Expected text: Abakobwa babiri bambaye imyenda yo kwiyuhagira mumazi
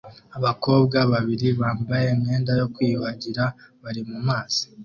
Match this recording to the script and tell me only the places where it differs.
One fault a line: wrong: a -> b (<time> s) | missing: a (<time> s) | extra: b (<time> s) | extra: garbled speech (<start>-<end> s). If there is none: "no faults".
extra: bari (3.8 s)